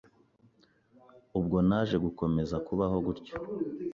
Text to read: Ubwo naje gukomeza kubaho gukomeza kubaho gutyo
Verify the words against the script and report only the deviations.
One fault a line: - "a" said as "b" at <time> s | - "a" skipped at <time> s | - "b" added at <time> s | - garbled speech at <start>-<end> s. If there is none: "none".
- "gukomeza kubaho" skipped at 3.0 s